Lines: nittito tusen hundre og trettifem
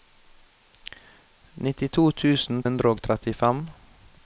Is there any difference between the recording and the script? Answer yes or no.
no